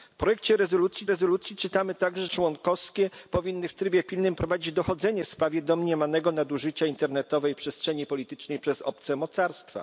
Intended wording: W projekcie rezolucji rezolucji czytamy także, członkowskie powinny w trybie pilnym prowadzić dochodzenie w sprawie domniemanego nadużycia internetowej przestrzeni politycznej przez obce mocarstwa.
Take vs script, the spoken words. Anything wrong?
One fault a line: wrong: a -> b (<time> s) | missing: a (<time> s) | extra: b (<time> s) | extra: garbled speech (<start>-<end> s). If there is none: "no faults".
no faults